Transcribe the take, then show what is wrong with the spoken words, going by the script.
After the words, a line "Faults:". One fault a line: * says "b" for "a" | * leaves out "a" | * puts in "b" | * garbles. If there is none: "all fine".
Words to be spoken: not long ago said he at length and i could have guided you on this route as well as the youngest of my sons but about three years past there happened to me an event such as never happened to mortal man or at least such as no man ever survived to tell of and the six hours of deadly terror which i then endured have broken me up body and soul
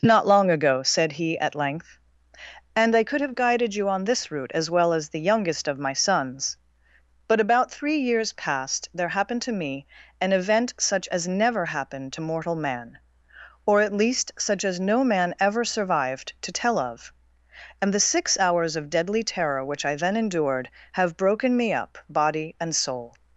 not long ago said he at length and i could have guided you on this route as well as the youngest of my sons but about three years past there happened to me an event such as never happened to mortal man or at least such as no man ever survived to tell of and the six hours of deadly terror which i then endured have broken me up body and soul
Faults:
all fine